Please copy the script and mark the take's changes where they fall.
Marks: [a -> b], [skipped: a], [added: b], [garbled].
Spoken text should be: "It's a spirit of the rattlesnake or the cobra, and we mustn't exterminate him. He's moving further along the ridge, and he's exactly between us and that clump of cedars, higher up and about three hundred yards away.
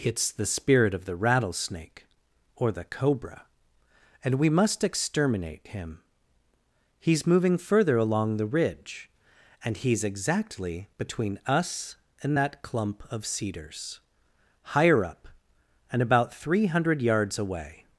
"It's [a -> the] spirit of the rattlesnake or the cobra, and we [mustn't -> must] exterminate him. He's moving further along the ridge, and he's exactly between us and that clump of cedars, higher up and about three hundred yards away.